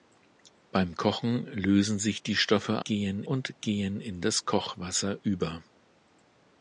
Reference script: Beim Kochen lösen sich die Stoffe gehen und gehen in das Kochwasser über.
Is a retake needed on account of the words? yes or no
no